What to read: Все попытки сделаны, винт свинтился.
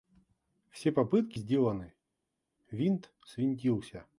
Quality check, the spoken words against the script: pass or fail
pass